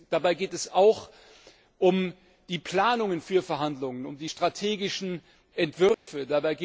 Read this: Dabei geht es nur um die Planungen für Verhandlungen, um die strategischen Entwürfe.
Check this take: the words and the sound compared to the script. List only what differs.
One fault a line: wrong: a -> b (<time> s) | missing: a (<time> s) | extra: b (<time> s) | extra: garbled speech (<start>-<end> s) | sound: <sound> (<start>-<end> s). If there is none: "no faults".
wrong: nur -> auch (0.7 s)
sound: dropout (5.9-6.1 s)